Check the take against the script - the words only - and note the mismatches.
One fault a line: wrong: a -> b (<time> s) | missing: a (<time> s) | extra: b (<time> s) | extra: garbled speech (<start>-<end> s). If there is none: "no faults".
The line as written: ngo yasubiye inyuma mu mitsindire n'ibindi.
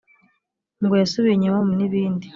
missing: mitsindire (1.7 s)